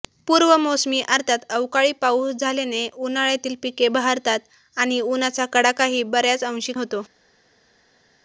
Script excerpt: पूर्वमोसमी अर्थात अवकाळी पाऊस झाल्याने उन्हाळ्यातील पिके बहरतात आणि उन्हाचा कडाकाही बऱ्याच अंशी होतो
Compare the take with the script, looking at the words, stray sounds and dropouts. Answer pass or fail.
pass